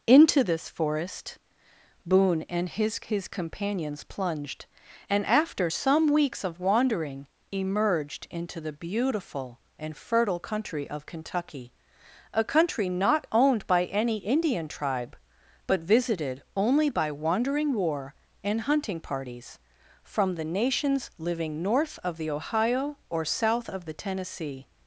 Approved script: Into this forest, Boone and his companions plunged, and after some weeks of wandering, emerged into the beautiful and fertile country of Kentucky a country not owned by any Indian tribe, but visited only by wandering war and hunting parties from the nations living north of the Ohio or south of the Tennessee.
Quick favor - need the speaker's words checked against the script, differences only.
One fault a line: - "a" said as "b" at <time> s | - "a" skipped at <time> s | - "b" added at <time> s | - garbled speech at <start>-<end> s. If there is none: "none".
- "his" added at 3.0 s